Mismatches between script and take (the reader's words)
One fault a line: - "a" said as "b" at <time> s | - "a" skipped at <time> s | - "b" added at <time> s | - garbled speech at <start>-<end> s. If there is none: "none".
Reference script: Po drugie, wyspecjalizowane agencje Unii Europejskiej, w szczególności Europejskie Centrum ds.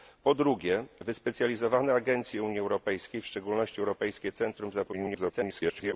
- garbled speech at 4.9-5.9 s